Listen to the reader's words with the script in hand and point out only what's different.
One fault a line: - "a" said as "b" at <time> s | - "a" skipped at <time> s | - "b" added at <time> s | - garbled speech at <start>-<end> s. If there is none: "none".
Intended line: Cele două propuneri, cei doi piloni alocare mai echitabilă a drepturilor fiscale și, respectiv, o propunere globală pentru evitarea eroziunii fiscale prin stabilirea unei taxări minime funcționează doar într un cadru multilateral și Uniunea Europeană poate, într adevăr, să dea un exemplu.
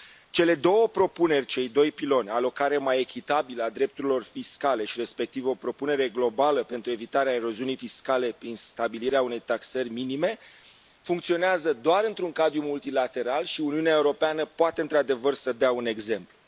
none